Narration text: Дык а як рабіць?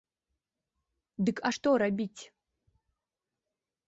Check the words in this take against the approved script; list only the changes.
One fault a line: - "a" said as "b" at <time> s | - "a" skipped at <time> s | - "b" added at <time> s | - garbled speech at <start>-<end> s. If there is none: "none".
- "як" said as "што" at 1.5 s